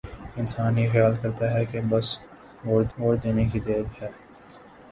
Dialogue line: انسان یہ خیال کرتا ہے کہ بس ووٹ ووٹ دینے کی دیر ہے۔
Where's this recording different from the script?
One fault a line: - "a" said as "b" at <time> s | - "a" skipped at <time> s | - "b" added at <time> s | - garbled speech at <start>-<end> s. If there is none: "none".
none